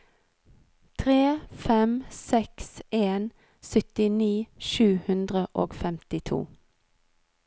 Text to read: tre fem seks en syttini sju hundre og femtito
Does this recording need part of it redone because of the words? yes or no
no